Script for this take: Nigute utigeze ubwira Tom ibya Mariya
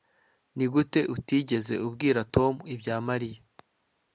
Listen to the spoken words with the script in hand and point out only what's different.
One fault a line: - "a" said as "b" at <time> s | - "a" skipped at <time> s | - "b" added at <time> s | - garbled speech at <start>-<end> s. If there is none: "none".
none